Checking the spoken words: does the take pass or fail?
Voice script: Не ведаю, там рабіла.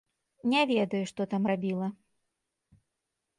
fail